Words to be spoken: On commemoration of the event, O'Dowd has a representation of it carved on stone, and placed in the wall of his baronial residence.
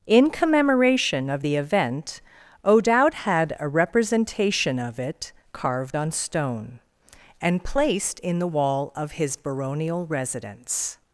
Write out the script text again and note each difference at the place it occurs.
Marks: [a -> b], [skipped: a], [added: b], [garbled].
[On -> In] commemoration of the event, O'Dowd [has -> had] a representation of it carved on stone, and placed in the wall of his baronial residence.